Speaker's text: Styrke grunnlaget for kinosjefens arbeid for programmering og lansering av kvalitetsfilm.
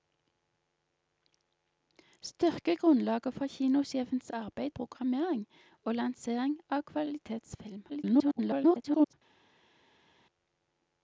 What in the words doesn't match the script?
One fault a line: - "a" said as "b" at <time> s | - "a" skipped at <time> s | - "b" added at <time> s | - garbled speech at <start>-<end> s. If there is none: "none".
- "for" skipped at 4.7 s
- garbled speech at 7.9-9.1 s